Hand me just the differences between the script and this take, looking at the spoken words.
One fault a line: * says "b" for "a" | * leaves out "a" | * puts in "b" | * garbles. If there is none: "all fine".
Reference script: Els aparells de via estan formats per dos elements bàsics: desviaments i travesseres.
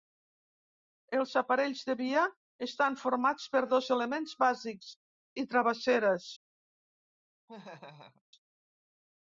* leaves out "desviaments"